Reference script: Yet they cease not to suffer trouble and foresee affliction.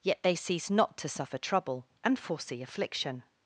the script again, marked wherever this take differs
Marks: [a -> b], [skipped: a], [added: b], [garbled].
Yet they cease not to suffer trouble and foresee affliction.